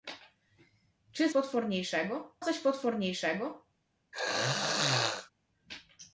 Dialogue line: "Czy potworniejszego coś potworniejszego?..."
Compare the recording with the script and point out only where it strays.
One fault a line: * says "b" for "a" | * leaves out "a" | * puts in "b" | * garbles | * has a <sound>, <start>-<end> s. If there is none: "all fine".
* has a throat clearing, 4.1-5.3 s